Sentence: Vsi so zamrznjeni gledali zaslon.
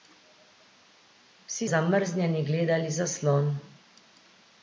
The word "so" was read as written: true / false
false